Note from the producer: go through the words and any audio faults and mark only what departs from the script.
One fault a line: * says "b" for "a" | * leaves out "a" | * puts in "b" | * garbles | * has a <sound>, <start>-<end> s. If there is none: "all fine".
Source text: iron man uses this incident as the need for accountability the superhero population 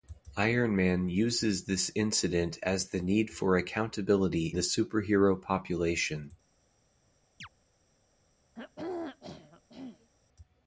* has a chirp, 7.4-7.5 s
* has a throat clearing, 8.6-10.1 s